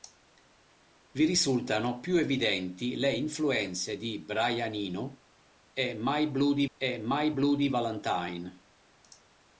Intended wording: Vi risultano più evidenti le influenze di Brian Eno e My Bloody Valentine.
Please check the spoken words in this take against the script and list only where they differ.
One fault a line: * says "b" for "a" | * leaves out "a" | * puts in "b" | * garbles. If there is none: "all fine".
* puts in "e My Bloody"